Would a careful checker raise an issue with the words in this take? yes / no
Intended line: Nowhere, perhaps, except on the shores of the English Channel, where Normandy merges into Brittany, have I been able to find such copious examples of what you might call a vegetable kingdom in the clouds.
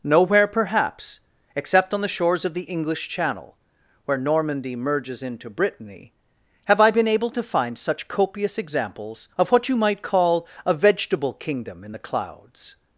no